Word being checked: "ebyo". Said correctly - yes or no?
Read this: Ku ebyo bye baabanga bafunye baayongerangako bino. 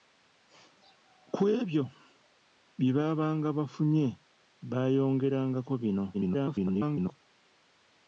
yes